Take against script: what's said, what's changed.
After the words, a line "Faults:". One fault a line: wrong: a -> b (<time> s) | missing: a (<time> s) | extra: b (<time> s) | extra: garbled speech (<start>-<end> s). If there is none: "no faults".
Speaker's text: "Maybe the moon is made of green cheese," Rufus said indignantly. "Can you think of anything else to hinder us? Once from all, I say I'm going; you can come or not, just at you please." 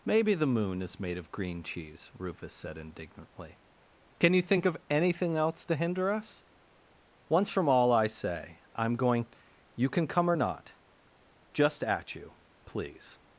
"Maybe the moon is made of green cheese," Rufus said indignantly. "Can you think of anything else to hinder us? Once from all, I say I'm going; you can come or not, just at you please."
Faults:
no faults